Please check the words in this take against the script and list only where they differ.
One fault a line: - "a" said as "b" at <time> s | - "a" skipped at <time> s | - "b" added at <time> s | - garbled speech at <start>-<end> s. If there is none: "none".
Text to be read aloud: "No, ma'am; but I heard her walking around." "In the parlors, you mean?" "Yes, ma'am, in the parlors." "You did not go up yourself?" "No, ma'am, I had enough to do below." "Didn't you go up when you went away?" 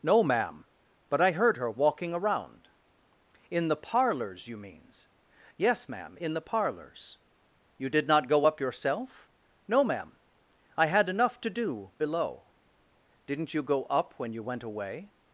- "mean" said as "means" at 4.6 s